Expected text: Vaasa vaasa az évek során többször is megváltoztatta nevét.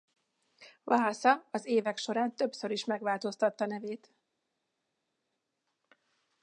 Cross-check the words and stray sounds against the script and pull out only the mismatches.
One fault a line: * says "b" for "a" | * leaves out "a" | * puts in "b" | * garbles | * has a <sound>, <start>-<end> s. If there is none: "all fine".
* leaves out "vaasa"